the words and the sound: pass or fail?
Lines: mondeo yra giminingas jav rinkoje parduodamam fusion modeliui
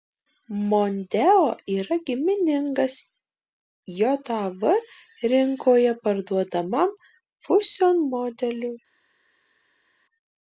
pass